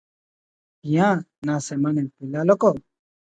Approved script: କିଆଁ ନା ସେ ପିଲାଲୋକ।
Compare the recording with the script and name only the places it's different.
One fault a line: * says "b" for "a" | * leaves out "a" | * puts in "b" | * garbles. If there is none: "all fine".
* says "ସେମାନେ" for "ସେ"